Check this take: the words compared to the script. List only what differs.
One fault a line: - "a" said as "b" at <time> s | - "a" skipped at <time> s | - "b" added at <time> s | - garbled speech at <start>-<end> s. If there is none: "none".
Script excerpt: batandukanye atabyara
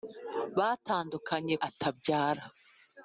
none